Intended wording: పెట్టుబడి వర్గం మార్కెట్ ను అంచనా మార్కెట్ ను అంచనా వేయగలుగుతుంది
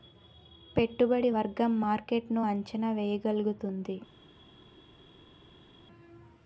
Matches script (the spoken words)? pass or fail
fail